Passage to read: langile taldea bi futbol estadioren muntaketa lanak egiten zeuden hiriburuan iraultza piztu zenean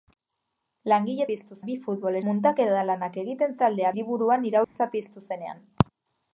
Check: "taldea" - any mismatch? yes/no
yes